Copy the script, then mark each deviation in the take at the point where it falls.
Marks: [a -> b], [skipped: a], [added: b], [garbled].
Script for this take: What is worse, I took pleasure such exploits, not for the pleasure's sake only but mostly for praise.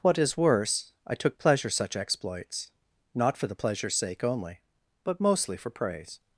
What is worse, I took pleasure such exploits, not for the pleasure's sake only but mostly for praise.